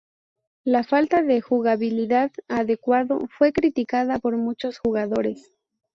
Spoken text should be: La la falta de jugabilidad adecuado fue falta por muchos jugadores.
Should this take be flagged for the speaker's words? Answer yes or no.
yes